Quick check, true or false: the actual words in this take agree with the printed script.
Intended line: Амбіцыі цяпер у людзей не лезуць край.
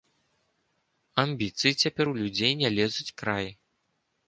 true